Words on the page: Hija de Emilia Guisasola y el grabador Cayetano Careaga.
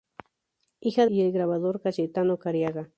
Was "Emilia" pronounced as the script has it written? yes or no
no